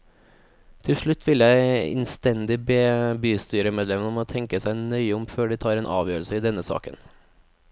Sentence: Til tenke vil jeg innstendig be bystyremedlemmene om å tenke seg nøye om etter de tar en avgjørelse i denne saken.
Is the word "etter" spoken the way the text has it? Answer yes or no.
no